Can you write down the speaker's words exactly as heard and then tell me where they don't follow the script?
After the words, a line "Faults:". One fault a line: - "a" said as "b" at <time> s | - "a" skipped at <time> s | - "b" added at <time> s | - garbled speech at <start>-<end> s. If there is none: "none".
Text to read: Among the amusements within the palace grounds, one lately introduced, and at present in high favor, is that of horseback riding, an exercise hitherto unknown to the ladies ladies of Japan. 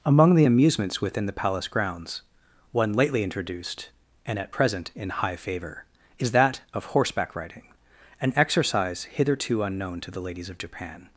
Among the amusements within the palace grounds, one lately introduced, and at present in high favor, is that of horseback riding, an exercise hitherto unknown to the ladies of Japan.
Faults:
- "ladies" skipped at 10.5 s